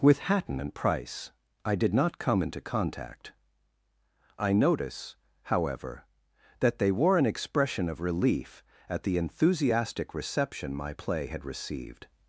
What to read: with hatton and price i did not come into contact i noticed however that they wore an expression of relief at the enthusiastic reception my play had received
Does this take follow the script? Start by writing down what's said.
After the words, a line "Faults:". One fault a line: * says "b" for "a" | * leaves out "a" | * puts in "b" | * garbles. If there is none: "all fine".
with hatton and price i did not come into contact i notice however that they wore an expression of relief at the enthusiastic reception my play had received
Faults:
* says "notice" for "noticed"